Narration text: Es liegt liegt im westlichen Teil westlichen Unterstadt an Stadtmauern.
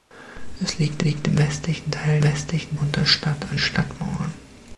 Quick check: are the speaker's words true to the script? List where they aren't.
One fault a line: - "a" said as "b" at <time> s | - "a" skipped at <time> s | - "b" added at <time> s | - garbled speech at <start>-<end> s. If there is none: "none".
none